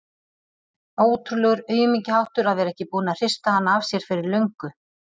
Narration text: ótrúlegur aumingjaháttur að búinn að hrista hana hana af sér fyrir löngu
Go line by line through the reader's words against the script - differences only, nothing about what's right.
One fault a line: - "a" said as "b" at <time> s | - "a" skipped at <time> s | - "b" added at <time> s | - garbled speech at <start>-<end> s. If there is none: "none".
- "vera ekki" added at 2.6 s
- "hana" skipped at 3.8 s